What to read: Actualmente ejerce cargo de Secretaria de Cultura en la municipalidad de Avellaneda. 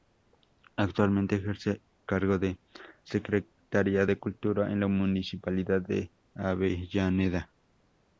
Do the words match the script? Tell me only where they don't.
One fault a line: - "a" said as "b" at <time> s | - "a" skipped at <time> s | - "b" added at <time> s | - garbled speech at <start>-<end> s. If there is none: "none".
none